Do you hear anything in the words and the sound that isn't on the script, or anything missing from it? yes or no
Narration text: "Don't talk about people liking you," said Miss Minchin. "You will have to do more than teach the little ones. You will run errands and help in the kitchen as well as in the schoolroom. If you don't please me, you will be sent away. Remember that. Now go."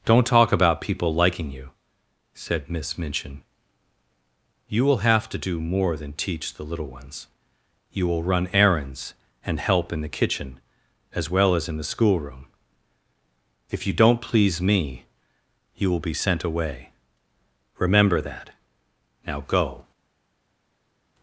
no